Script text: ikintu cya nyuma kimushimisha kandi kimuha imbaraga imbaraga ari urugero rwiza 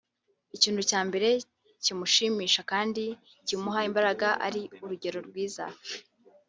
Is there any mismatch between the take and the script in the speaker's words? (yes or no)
yes